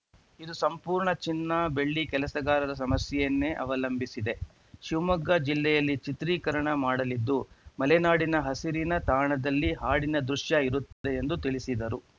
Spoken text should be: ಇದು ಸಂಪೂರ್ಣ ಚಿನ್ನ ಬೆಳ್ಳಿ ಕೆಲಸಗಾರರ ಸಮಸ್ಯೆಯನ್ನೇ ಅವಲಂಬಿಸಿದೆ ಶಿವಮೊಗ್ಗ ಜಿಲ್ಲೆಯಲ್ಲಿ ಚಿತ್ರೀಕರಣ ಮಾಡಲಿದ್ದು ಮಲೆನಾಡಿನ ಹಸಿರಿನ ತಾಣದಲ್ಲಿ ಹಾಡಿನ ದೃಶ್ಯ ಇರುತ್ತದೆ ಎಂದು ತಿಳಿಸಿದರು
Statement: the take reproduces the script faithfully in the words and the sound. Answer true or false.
false